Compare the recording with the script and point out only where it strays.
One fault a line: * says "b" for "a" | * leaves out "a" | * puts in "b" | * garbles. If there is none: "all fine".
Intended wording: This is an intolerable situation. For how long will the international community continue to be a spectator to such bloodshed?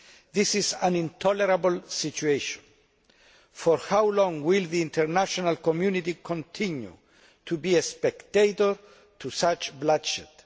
all fine